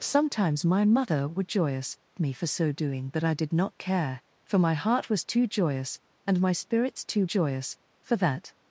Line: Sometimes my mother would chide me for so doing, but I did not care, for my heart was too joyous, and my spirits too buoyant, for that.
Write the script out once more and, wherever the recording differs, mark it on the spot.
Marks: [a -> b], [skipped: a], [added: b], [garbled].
Sometimes my mother would [chide -> joyous] me for so doing, but I did not care, for my heart was too joyous, and my spirits too [buoyant, -> joyous] for that.